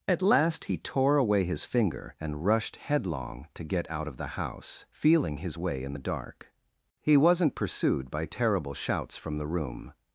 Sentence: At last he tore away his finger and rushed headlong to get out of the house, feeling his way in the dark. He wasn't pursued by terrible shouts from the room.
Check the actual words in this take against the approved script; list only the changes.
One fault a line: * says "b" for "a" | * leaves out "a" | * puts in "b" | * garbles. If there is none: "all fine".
all fine